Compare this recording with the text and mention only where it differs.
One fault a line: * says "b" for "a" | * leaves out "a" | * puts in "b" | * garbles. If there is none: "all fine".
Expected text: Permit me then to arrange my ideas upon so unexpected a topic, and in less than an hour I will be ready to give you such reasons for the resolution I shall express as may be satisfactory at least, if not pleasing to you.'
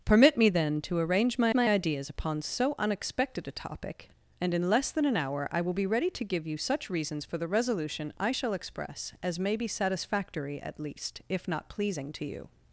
* puts in "my"